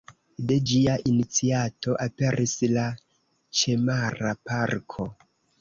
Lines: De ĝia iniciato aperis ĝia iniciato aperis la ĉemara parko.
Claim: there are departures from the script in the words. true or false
true